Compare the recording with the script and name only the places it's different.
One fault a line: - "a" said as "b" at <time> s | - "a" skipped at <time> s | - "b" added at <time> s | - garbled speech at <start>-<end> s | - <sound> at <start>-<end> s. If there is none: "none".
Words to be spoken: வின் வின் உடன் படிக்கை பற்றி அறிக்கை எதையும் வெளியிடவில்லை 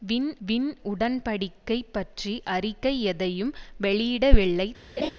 - laugh at 5.0-5.1 s